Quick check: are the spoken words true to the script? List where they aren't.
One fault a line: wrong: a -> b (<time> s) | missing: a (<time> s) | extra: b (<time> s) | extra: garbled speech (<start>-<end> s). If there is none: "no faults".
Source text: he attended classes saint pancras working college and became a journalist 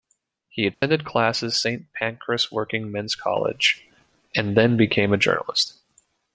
extra: men's (2.9 s)
extra: then (4.6 s)